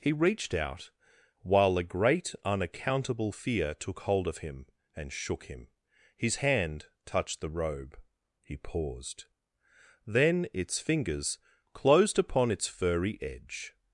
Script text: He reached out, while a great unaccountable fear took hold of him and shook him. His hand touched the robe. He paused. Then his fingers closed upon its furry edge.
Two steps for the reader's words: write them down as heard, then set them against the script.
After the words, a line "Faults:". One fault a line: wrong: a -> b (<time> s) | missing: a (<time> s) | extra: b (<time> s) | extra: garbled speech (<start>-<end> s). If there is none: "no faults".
He reached out, while a great unaccountable fear took hold of him and shook him. His hand touched the robe. He paused. Then its fingers closed upon its furry edge.
Faults:
wrong: his -> its (10.5 s)